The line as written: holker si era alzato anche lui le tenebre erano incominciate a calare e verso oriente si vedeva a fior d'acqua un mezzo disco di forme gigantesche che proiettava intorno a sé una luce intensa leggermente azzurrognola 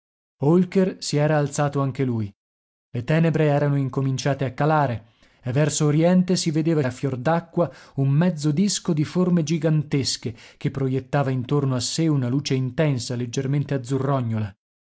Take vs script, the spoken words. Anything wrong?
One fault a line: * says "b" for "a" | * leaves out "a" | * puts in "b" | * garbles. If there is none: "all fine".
all fine